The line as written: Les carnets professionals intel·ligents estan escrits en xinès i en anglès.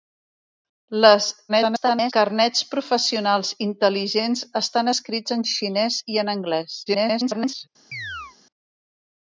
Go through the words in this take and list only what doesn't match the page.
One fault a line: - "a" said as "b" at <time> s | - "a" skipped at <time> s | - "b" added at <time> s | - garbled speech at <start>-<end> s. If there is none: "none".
- garbled speech at 1.5-2.1 s
- garbled speech at 6.9-7.7 s